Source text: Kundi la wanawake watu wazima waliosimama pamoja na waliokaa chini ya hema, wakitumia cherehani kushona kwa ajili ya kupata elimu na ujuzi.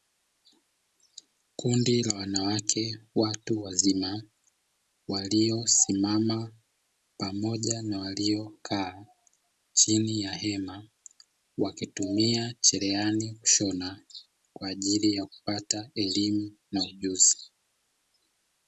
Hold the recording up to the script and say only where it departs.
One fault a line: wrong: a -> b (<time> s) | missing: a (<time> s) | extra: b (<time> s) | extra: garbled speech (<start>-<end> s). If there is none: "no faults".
no faults